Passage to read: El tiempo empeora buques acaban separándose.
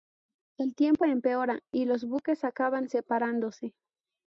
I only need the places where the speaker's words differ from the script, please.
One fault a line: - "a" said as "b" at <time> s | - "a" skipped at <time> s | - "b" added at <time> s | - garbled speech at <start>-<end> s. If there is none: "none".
- "y los" added at 1.7 s